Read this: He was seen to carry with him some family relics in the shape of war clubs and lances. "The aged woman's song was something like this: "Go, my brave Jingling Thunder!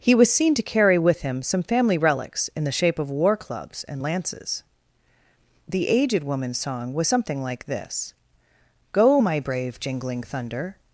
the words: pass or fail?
pass